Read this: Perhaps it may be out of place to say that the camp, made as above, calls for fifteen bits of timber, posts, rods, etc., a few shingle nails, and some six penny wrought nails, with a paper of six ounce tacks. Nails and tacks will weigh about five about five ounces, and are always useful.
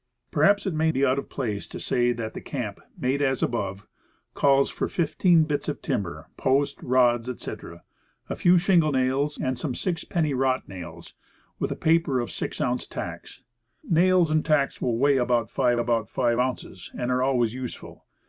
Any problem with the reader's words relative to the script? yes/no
no